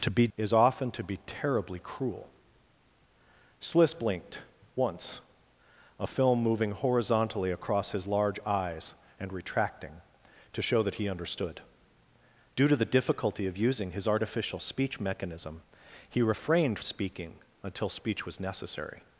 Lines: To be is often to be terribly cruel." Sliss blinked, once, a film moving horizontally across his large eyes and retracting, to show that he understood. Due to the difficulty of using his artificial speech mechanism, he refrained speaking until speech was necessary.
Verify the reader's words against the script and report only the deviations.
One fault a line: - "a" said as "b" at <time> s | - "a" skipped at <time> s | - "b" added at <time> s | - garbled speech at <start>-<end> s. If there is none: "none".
none